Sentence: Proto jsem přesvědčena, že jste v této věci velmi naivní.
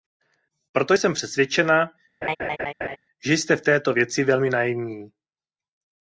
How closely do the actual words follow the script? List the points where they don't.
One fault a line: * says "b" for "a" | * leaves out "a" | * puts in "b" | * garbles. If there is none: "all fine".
all fine